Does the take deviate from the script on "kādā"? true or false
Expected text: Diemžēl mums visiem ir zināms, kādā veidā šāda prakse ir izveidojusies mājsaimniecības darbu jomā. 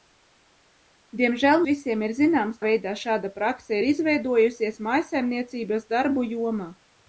true